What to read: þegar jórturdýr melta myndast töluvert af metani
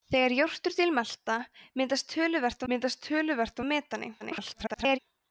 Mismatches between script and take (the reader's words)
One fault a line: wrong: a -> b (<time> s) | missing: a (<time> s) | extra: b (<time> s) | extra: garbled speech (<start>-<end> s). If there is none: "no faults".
extra: myndast töluvert (2.7 s)
extra: garbled speech (4.2-5.0 s)